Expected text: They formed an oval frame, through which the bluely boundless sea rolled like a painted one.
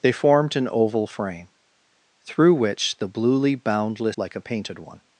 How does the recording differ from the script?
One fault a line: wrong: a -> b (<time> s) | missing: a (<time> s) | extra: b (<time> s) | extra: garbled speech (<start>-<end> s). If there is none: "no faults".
missing: sea rolled (4.2 s)